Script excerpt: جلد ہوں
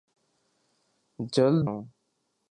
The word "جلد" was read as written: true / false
true